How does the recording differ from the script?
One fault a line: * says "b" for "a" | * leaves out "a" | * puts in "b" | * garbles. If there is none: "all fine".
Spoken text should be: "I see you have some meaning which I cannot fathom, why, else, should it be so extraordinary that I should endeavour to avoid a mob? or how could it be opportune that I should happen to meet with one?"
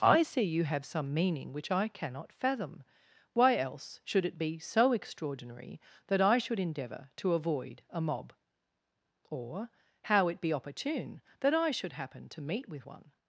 * leaves out "could"